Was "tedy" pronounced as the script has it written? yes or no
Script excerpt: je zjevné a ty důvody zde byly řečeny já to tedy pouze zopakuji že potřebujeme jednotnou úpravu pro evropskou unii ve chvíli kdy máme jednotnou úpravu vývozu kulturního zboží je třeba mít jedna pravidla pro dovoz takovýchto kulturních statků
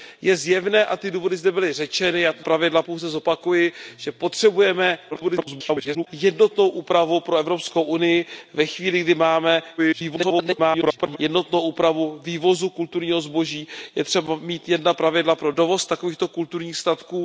no